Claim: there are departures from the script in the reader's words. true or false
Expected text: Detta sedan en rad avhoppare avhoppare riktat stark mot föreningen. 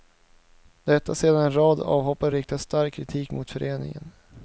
true